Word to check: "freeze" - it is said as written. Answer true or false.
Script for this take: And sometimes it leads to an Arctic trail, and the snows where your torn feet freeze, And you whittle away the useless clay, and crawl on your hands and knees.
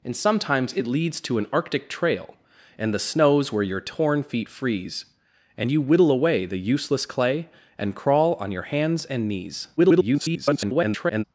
true